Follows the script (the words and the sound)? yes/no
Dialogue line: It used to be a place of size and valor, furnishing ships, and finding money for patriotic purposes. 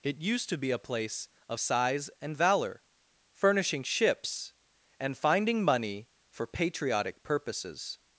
yes